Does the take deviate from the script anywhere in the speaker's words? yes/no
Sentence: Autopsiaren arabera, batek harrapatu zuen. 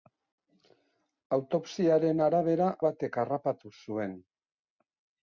no